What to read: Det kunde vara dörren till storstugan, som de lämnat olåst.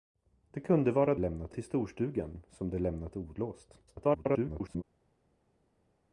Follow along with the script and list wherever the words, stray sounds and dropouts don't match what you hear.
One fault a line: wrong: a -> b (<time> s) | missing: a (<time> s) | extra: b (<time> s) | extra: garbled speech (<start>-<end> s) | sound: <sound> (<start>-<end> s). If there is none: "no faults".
wrong: dörren -> lämnat (1.2 s)
extra: garbled speech (3.9-4.8 s)